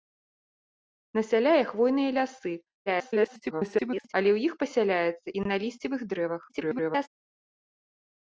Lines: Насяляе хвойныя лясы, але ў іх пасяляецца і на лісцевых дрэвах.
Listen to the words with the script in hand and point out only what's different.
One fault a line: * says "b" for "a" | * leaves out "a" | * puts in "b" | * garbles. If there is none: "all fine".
* garbles
* garbles